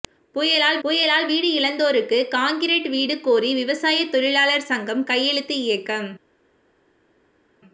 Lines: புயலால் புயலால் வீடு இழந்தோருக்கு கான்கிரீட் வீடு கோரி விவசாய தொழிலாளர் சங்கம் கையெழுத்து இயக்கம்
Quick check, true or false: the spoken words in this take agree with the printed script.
true